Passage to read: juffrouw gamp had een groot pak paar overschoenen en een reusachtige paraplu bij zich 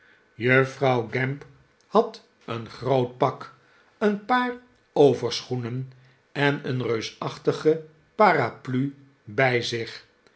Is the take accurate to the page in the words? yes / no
no